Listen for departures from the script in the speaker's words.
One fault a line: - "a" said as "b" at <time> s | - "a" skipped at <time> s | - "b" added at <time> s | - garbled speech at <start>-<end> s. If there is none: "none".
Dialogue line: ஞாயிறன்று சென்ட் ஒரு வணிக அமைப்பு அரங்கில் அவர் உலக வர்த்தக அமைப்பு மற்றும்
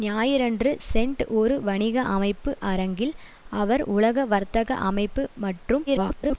- garbled speech at 5.9-6.4 s